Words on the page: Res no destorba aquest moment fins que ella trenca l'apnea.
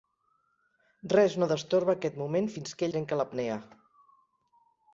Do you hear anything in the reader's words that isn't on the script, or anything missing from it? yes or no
yes